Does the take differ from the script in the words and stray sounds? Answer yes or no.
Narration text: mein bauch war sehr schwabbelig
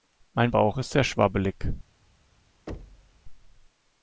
yes